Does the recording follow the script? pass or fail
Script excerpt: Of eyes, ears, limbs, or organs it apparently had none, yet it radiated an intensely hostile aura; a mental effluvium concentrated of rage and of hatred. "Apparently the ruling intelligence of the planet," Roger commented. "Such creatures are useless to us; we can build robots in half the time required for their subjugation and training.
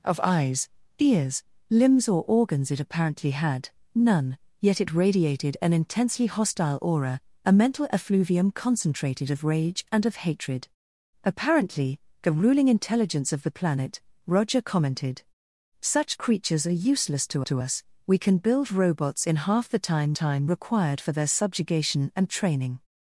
fail